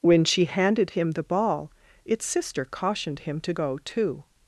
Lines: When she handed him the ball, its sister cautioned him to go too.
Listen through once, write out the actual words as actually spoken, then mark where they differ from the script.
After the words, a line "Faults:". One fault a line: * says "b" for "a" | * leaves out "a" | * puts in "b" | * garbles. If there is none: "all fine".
When she handed him the ball, its sister cautioned him to go too.
Faults:
all fine